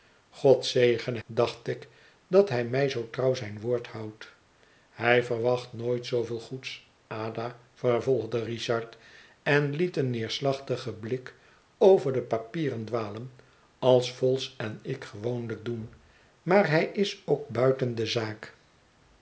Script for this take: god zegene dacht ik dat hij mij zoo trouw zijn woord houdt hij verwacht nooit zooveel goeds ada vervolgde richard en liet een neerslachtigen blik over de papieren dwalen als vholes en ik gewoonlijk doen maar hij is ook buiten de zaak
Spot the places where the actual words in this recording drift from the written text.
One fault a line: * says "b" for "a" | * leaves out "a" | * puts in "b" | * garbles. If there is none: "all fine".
all fine